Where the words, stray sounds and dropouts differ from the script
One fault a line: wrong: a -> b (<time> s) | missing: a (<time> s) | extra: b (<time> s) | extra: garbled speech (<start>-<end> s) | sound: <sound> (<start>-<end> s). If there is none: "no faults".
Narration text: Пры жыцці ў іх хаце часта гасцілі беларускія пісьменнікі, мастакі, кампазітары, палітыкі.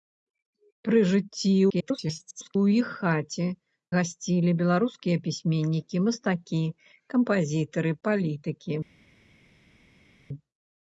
extra: garbled speech (1.7-2.6 s)
missing: часта (3.5 s)